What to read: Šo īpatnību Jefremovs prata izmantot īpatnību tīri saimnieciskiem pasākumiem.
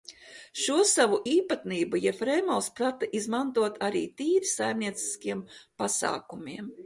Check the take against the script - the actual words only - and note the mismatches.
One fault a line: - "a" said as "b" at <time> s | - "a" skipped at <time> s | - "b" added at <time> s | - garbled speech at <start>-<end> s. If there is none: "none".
- "savu" added at 0.9 s
- "īpatnību" said as "arī" at 3.9 s